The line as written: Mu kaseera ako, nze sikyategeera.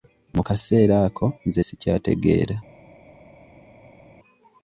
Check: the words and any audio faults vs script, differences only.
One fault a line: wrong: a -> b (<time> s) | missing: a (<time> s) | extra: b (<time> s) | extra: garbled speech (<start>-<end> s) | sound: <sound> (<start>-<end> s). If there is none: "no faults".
no faults